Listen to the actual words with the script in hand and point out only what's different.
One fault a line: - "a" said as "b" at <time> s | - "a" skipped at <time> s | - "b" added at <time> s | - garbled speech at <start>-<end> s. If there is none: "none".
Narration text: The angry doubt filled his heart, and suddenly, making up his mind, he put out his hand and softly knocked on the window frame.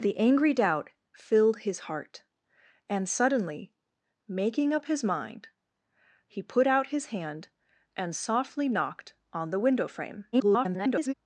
- garbled speech at 10.3-11.1 s